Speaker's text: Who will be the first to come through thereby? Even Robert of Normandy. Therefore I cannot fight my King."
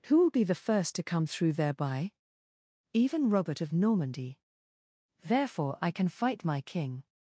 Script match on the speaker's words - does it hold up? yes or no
no